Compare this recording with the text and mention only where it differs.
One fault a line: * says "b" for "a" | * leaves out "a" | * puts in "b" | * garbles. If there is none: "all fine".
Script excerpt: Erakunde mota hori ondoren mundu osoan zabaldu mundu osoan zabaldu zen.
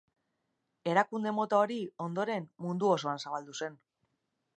* leaves out "mundu osoan zabaldu"